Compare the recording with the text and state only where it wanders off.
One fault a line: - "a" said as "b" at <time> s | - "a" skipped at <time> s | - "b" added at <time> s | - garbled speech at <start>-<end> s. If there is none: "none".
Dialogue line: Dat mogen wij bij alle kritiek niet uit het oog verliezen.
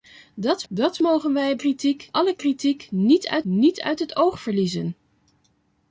- "dat" added at 0.7 s
- "bij" said as "kritiek" at 1.5 s
- "niet uit" added at 3.4 s